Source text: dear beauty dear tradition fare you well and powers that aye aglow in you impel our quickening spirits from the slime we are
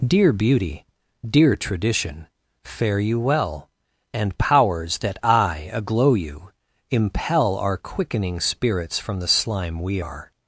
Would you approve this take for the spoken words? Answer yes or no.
no